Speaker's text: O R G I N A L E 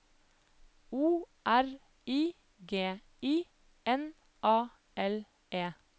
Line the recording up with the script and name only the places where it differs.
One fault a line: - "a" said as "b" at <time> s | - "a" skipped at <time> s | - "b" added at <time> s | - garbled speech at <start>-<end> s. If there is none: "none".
- "I" added at 2.1 s